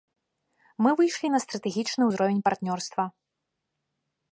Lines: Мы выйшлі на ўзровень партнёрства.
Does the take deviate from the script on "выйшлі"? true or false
false